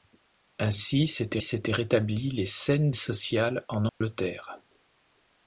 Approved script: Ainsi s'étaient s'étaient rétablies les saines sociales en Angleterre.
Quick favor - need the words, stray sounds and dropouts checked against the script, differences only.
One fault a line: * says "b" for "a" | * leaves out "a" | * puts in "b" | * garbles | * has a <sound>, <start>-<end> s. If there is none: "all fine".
* has a dropout, 3.9-4.0 s